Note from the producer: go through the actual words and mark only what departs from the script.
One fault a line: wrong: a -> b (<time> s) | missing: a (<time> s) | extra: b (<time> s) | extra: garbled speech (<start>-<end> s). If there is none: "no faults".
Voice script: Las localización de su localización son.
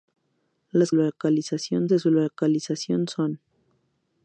no faults